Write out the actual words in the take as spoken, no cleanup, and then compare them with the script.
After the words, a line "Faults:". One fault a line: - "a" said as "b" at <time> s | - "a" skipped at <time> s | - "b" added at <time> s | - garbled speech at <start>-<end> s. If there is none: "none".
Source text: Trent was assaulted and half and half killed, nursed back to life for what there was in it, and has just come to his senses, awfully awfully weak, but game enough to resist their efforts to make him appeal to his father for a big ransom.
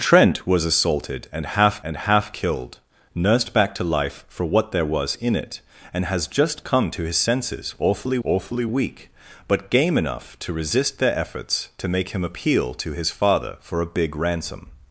Trent was assaulted and half and half killed, nursed back to life for what there was in it, and has just come to his senses, awfully awfully weak, but game enough to resist their efforts to make him appeal to his father for a big ransom.
Faults:
none